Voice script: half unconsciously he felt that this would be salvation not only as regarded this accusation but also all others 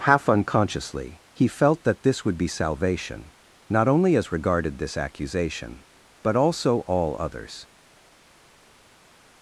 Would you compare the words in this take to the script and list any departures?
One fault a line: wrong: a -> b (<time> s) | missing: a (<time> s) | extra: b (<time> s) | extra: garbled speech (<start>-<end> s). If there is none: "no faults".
no faults